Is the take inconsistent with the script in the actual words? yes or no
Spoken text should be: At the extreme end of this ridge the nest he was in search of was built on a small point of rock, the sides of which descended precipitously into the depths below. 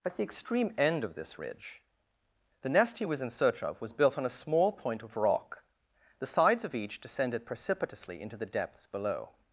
yes